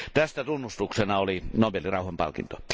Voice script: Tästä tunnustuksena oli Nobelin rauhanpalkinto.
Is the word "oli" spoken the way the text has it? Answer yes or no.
yes